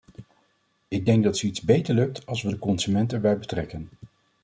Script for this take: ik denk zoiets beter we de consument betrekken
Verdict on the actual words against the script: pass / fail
fail